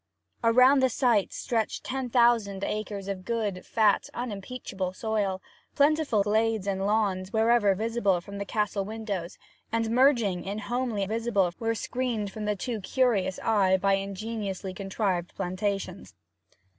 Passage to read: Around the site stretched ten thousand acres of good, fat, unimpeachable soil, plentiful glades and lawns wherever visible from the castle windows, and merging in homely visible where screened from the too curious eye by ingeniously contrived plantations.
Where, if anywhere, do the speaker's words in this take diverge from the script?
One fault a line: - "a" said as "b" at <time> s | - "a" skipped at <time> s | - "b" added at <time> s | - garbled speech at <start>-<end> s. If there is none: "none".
none